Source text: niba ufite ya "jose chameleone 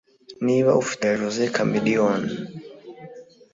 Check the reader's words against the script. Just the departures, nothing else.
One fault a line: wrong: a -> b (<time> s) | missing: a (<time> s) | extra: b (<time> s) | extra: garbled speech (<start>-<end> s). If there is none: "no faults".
no faults